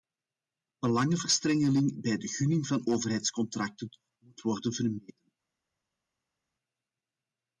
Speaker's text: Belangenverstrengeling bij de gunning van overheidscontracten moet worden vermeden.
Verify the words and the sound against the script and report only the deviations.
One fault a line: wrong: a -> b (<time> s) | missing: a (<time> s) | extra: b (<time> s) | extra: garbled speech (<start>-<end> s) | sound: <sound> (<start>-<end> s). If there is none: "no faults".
no faults